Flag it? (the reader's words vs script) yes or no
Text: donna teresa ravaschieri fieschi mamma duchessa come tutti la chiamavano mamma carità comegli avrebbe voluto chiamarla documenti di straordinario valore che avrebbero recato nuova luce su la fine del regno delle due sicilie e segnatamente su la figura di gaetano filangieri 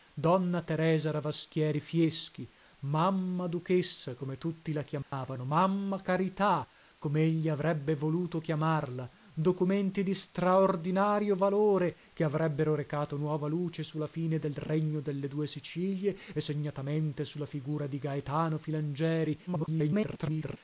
yes